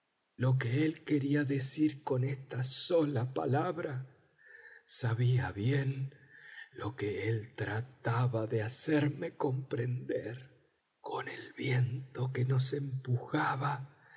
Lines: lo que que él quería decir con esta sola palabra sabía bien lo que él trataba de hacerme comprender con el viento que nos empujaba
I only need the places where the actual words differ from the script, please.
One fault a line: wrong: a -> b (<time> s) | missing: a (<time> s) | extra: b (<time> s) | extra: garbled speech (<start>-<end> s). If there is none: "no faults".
missing: que (0.8 s)